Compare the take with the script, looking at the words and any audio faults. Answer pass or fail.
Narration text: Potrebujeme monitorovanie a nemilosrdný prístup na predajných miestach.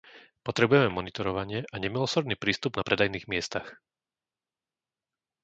pass